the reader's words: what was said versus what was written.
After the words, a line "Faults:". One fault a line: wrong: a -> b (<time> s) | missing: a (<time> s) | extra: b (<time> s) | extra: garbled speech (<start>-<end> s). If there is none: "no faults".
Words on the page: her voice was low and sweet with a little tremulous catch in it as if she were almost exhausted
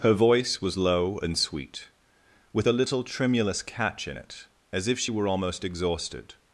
her voice was low and sweet with a little tremulous catch in it as if she were almost exhausted
Faults:
no faults